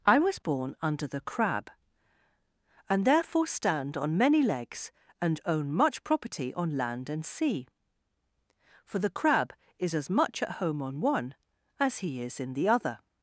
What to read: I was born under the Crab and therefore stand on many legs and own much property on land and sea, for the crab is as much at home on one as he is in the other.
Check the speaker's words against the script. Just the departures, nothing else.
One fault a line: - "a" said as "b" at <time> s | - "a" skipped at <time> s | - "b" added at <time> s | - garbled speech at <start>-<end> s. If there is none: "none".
none